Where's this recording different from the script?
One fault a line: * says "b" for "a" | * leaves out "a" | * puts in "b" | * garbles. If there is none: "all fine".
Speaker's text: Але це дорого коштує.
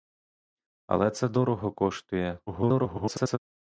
* garbles